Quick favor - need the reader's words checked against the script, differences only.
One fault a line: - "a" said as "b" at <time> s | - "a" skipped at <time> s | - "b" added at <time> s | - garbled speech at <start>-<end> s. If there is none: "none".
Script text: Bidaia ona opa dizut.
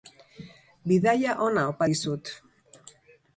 none